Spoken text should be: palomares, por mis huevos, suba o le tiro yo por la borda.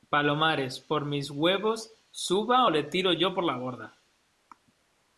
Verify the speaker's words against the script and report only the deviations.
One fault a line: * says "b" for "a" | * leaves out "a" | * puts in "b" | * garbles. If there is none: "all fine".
all fine